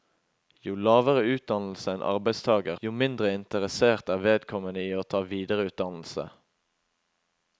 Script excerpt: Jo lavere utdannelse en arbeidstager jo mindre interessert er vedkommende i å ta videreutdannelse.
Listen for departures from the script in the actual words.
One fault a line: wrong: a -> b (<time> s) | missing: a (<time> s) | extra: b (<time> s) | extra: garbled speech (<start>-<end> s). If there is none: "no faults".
no faults